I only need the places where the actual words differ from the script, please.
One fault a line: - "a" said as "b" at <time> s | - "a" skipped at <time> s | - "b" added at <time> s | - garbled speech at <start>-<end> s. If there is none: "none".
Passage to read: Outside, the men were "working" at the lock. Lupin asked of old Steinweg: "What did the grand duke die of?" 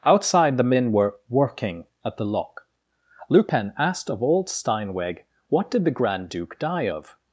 none